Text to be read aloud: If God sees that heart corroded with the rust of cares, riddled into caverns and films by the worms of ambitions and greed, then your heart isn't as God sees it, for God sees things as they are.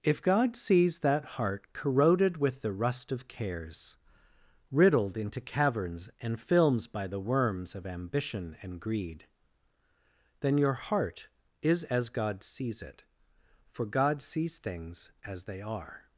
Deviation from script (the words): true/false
true